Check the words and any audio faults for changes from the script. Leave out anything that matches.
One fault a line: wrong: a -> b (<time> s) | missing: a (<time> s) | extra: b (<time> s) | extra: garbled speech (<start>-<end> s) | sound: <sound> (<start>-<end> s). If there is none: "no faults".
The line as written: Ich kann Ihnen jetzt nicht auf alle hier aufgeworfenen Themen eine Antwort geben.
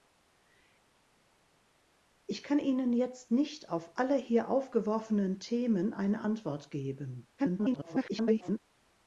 extra: garbled speech (7.4-8.6 s)